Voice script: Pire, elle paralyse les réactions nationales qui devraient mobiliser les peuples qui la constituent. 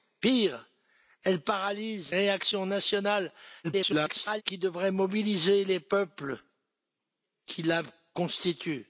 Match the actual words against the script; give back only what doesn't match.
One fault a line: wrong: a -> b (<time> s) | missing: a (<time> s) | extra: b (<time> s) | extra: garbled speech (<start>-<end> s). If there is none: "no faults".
missing: les (2.1 s)
extra: garbled speech (3.6-4.4 s)